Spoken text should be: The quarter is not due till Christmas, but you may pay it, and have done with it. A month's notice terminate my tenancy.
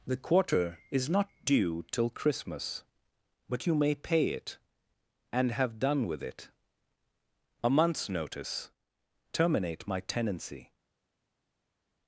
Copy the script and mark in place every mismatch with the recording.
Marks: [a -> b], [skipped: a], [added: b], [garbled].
The quarter is not due till Christmas, but you may pay it, and have done with it. A month's notice terminate my tenancy.